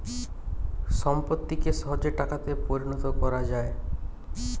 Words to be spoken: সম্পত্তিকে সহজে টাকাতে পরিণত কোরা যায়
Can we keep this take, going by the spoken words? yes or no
yes